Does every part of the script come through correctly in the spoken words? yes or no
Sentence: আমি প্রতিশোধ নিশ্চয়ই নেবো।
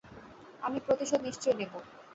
yes